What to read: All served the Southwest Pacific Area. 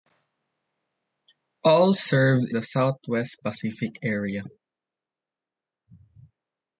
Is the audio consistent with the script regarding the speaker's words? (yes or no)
yes